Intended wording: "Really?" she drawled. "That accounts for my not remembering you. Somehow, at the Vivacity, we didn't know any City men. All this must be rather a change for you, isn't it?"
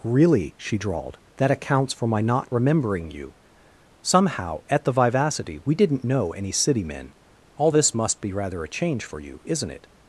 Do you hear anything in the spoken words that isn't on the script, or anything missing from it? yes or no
no